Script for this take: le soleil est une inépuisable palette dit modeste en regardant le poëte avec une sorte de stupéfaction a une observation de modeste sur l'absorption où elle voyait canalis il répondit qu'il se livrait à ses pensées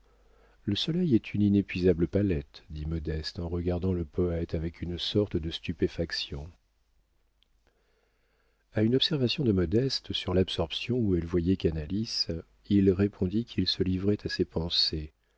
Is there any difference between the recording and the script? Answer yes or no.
no